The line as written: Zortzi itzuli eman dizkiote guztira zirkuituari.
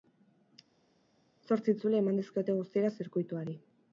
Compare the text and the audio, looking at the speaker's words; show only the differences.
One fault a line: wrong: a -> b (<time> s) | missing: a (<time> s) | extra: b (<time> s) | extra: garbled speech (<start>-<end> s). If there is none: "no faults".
no faults